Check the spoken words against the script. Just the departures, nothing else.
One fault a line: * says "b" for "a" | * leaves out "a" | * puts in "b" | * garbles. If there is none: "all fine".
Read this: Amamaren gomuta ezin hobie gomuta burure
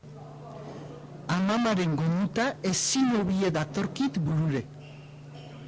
* says "datorkit" for "gomuta"